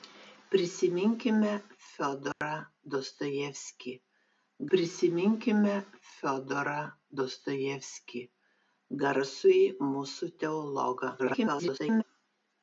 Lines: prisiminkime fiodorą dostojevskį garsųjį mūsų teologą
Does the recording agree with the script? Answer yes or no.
no